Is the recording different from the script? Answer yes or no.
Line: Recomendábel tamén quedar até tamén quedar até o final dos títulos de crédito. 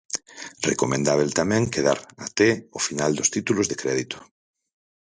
yes